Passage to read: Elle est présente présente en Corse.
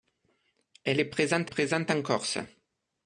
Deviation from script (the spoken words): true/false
false